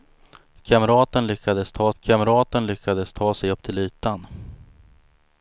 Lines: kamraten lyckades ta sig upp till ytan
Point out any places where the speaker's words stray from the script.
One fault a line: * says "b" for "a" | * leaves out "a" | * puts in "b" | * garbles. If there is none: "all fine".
* puts in "kamraten lyckades ta"